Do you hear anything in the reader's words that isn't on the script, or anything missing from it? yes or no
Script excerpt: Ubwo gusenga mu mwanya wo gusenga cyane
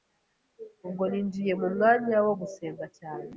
yes